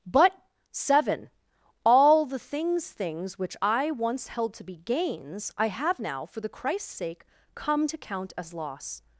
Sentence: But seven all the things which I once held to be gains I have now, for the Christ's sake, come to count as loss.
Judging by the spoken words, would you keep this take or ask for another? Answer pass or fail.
fail